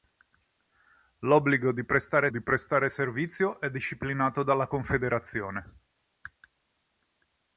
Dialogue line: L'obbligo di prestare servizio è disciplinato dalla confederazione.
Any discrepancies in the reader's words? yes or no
yes